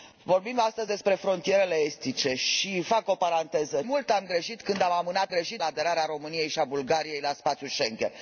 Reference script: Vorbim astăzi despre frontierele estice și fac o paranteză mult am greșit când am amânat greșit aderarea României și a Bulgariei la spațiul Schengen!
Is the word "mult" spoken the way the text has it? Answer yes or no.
yes